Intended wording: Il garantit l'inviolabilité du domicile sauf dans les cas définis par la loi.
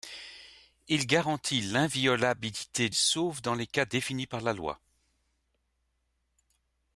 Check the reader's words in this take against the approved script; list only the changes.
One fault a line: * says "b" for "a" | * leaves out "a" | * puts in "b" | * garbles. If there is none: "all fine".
* leaves out "du domicile"